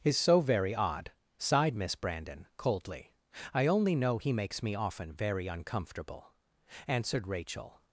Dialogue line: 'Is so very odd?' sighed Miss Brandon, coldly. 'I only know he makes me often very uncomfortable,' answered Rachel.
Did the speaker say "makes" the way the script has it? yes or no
yes